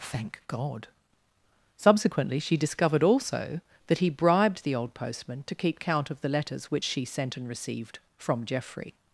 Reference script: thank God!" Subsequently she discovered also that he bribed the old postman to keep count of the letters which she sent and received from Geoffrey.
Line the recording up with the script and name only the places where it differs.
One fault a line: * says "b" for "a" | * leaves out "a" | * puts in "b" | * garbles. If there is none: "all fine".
all fine